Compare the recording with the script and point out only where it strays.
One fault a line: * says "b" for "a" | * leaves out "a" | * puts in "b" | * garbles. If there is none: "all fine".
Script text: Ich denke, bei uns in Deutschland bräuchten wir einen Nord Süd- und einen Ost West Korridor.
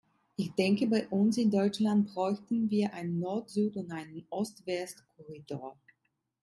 all fine